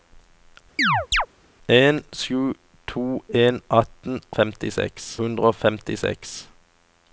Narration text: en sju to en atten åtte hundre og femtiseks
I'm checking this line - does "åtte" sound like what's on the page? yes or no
no